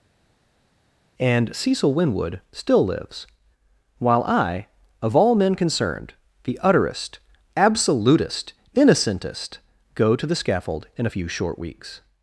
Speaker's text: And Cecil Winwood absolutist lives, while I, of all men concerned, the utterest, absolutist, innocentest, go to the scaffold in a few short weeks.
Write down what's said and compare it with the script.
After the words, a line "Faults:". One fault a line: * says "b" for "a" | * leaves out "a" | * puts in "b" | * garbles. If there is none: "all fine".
And Cecil Winwood still lives, while I, of all men concerned, the utterest, absolutist, innocentest, go to the scaffold in a few short weeks.
Faults:
* says "still" for "absolutist"